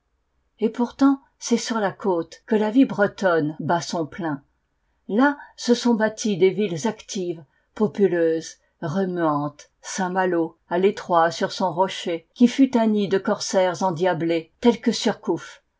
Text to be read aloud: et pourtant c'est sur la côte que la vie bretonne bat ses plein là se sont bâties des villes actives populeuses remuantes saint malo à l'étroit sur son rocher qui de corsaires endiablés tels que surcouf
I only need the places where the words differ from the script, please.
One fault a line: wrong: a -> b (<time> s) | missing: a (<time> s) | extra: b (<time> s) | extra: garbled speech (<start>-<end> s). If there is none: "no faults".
wrong: ses -> son (3.8 s)
extra: fut un nid (12.5 s)